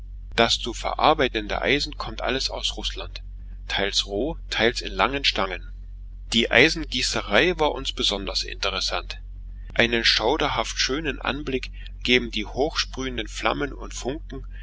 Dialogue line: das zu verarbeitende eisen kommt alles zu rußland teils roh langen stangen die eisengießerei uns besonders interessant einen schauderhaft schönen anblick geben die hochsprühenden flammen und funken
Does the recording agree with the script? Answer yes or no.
no